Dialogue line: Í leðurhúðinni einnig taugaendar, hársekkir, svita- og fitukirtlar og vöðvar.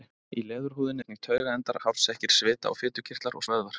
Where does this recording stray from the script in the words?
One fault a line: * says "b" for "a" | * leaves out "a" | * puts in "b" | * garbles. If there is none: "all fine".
all fine